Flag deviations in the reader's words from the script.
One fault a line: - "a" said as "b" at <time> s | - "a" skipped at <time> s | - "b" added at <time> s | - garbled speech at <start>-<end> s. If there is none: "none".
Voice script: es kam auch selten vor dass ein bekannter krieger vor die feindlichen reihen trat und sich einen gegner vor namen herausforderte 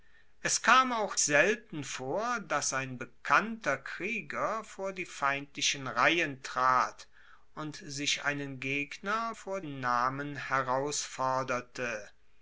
none